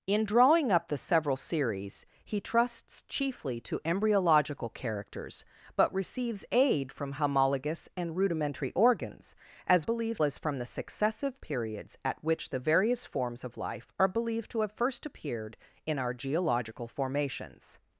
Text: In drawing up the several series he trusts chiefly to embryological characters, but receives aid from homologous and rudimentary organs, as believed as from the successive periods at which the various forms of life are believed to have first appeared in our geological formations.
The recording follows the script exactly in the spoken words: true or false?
true